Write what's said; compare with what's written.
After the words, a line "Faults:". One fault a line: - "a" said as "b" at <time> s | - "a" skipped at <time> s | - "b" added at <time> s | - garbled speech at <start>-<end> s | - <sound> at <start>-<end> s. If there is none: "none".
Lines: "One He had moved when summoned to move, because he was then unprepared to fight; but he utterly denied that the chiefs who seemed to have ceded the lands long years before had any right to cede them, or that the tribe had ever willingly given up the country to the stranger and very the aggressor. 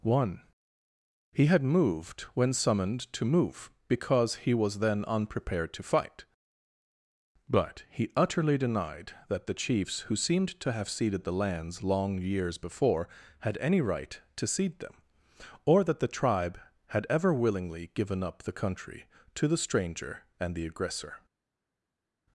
"One He had moved when summoned to move, because he was then unprepared to fight; but he utterly denied that the chiefs who seemed to have ceded the lands long years before had any right to cede them, or that the tribe had ever willingly given up the country to the stranger and the aggressor.
Faults:
- "very" skipped at 20.6 s